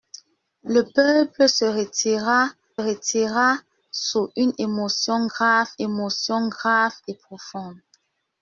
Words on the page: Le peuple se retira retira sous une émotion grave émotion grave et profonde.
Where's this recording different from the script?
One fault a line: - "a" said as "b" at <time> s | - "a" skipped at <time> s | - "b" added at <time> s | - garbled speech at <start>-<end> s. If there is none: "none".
none